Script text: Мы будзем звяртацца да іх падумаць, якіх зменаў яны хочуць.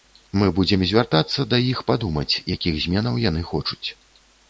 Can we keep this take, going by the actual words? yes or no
yes